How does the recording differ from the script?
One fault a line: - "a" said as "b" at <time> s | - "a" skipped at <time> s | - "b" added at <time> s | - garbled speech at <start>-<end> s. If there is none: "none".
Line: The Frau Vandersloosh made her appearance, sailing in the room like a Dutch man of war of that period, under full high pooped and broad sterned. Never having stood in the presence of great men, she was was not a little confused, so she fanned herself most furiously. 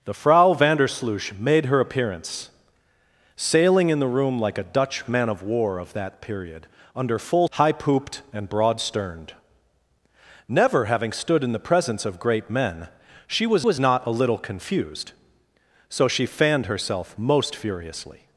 none